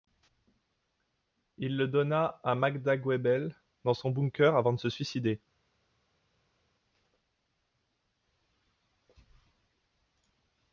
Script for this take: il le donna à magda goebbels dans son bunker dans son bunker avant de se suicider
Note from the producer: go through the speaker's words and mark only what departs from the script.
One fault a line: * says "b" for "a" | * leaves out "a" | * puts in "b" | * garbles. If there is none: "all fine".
* leaves out "dans son bunker"